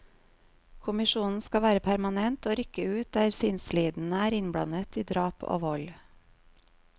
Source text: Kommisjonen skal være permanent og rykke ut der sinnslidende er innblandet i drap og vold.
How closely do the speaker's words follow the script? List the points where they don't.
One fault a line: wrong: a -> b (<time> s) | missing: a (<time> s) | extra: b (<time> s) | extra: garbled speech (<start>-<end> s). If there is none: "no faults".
no faults